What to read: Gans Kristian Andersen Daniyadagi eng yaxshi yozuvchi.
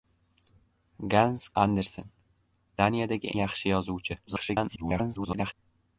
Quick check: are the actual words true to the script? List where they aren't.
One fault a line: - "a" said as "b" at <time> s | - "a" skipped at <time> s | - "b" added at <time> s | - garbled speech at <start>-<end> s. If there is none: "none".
- "Kristian" skipped at 1.5 s
- "eng" skipped at 3.3 s
- garbled speech at 4.3-5.5 s